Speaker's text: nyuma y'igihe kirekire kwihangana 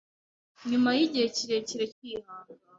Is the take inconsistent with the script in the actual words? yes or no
no